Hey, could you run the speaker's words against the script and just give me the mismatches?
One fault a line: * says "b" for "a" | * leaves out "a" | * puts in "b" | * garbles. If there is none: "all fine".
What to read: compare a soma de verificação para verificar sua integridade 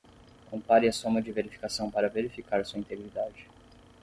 all fine